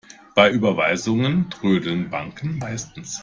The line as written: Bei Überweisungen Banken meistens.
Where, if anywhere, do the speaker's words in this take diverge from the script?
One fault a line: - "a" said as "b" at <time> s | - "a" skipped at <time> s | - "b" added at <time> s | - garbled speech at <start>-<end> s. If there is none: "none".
- "trödeln" added at 1.5 s